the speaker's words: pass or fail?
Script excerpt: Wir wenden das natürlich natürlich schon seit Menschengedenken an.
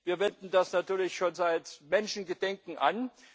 fail